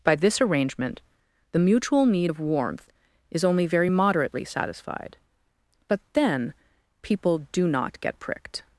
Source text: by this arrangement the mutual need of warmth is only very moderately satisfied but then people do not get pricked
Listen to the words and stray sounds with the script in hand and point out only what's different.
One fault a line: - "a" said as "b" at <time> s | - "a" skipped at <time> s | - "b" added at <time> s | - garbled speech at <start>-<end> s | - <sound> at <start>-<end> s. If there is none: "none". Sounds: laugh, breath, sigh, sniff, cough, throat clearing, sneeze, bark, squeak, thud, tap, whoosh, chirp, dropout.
none